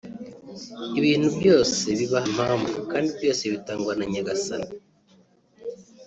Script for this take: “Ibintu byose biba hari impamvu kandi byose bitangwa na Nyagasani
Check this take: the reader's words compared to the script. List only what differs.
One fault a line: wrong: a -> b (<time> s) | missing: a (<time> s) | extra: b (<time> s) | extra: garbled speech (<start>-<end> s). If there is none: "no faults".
missing: hari (2.2 s)